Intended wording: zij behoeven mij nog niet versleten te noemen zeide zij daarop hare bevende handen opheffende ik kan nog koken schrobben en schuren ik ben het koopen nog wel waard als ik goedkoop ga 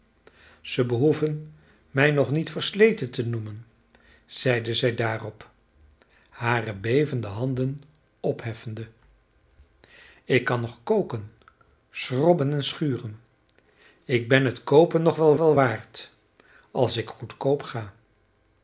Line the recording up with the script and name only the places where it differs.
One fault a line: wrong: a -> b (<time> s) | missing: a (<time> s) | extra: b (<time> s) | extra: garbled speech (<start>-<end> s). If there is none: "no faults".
extra: wel (15.4 s)